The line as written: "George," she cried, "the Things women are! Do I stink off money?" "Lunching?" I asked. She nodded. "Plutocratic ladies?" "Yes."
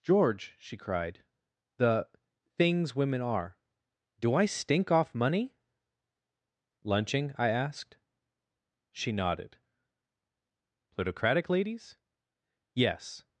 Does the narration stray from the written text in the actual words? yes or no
no